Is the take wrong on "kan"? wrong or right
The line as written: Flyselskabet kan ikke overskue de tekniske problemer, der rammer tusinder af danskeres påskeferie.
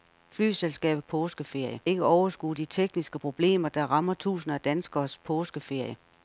wrong